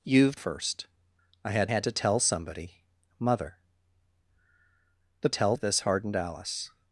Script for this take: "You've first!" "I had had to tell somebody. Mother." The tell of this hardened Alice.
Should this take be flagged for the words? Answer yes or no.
no